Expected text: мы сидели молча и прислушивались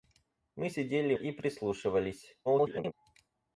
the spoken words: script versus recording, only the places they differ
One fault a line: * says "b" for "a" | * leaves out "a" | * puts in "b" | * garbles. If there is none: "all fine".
* leaves out "молча"
* garbles